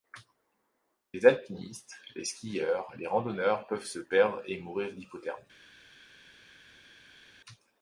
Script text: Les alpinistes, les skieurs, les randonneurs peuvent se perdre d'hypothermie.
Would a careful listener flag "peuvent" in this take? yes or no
no